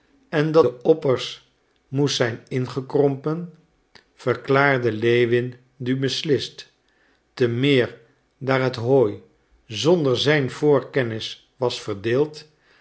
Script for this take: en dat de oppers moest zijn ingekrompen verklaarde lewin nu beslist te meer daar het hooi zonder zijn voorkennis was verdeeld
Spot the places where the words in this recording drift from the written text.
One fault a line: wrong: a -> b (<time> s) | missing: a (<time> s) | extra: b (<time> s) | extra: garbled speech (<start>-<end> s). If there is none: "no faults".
no faults